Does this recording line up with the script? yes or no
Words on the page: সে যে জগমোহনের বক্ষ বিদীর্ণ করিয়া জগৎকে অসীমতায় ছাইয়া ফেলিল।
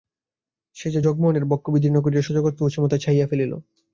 yes